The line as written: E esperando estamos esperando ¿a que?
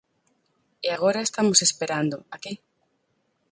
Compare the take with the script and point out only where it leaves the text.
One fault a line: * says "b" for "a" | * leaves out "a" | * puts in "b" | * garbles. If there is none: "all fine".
* says "agora" for "esperando"